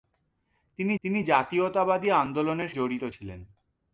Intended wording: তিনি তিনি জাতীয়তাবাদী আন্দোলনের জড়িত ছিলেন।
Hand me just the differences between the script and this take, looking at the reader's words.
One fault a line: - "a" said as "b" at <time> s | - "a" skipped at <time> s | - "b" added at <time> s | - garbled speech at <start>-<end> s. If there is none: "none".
none